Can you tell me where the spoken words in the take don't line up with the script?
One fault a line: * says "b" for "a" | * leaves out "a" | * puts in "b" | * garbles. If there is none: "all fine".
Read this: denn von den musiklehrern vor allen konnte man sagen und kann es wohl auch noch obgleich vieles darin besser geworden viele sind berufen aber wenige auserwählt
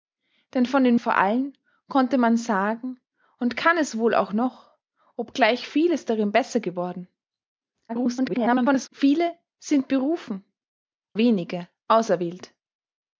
* leaves out "musiklehrern"
* garbles
* leaves out "aber"